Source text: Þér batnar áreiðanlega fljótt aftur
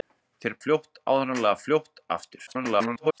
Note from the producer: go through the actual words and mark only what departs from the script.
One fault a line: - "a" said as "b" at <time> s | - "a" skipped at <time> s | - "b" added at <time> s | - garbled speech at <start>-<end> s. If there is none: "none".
- "batnar" said as "fljótt" at 0.6 s
- garbled speech at 2.5-3.2 s